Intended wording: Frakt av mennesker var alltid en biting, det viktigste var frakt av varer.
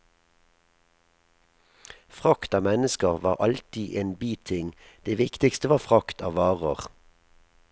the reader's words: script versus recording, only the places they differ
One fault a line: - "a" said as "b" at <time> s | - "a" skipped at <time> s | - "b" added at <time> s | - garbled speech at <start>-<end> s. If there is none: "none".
none